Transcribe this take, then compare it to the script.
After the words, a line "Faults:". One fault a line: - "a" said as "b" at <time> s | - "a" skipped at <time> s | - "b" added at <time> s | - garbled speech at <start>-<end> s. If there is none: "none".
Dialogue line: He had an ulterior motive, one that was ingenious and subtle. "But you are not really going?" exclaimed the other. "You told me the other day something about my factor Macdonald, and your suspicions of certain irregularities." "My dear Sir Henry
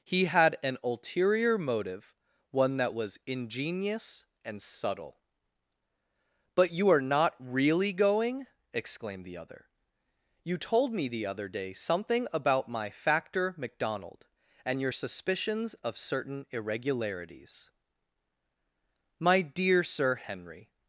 He had an ulterior motive, one that was ingenious and subtle. "But you are not really going?" exclaimed the other. "You told me the other day something about my factor Macdonald, and your suspicions of certain irregularities." "My dear Sir Henry
Faults:
none